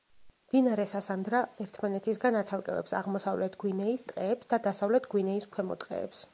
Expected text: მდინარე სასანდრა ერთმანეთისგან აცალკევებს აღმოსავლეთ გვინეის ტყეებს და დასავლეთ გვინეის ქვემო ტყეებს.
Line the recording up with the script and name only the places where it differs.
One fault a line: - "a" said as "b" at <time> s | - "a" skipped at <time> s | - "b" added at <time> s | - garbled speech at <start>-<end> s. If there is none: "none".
none